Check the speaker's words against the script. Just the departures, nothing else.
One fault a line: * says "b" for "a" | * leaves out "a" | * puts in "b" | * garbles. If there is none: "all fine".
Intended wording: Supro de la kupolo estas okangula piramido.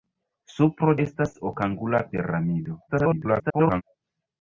* leaves out "de la kupolo"
* garbles